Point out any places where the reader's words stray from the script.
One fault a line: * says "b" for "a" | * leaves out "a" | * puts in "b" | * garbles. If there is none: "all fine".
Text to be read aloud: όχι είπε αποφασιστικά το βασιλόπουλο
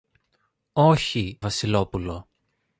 * leaves out "είπε αποφασιστικά το"